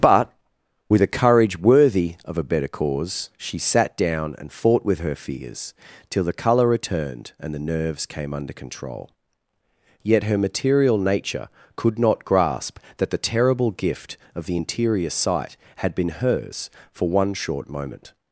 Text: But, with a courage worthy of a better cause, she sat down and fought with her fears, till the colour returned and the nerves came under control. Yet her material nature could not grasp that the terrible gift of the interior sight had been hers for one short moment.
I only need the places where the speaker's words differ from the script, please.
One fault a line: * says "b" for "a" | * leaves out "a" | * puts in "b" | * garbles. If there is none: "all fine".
all fine